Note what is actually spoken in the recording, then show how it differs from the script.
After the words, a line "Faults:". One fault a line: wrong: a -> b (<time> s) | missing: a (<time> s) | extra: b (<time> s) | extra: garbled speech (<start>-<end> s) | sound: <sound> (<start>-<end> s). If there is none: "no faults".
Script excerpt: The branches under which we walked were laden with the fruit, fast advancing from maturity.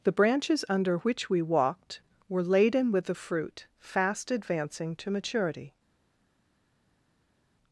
The branches under which we walked were laden with the fruit, fast advancing to maturity.
Faults:
wrong: from -> to (5.0 s)